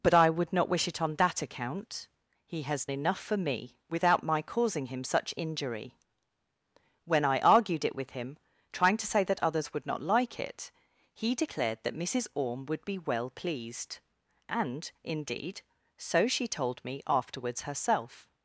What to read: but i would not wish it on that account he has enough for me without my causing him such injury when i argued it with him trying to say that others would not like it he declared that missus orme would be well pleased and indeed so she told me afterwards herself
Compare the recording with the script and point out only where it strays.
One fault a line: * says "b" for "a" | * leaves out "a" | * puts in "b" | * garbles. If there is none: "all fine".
all fine